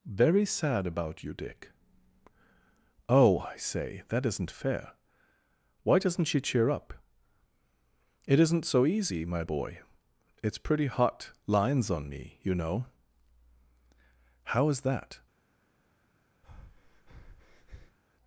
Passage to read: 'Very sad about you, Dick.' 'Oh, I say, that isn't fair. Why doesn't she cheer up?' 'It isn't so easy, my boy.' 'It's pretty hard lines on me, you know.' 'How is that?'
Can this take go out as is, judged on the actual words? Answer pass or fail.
fail